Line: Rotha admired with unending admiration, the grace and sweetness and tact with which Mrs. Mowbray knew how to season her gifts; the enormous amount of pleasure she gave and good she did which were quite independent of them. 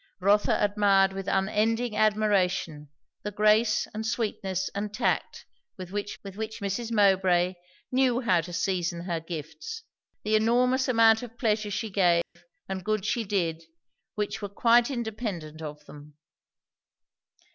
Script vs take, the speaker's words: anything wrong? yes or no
yes